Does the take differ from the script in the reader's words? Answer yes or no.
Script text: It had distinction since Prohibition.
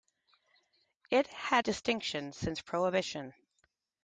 no